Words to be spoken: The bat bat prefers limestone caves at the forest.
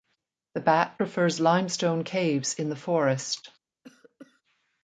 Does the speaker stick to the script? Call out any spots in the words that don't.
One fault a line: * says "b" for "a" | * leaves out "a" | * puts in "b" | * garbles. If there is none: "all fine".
* leaves out "bat"
* says "in" for "at"